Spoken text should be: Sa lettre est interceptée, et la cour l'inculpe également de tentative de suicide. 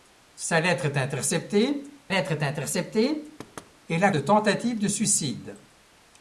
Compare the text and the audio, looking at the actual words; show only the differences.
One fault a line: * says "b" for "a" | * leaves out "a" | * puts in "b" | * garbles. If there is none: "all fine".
* says "lettre est interceptée et la" for "et la cour l'inculpe également"